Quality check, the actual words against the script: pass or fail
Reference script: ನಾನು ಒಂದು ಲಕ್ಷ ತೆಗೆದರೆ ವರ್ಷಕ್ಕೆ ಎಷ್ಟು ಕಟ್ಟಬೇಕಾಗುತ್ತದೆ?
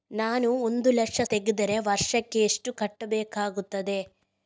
pass